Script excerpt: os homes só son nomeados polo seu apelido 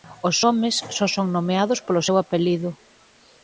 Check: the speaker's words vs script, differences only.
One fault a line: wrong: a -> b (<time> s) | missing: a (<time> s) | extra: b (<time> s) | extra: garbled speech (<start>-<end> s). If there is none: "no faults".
no faults